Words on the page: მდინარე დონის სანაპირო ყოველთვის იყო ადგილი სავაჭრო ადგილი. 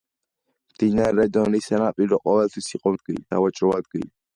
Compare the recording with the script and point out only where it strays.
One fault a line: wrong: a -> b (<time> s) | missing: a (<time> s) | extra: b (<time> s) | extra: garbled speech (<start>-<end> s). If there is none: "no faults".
no faults